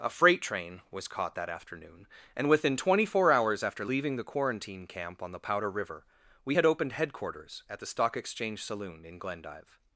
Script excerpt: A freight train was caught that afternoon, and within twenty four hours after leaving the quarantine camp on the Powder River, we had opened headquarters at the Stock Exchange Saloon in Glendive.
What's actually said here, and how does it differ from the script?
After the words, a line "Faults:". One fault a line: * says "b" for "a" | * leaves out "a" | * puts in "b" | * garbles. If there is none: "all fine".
A freight train was caught that afternoon, and within twenty four hours after leaving the quarantine camp on the Powder River, we had opened headquarters at the Stock Exchange Saloon in Glendive.
Faults:
all fine